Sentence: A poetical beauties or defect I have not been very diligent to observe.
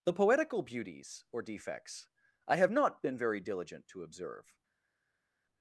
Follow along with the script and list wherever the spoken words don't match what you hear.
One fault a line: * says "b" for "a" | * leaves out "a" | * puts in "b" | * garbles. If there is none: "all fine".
* says "The" for "A"
* says "defects" for "defect"